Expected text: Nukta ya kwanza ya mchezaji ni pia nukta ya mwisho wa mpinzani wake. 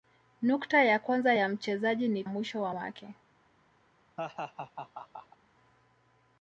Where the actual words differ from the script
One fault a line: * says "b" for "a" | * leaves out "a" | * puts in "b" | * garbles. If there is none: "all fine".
* leaves out "pia nukta ya"
* leaves out "mpinzani"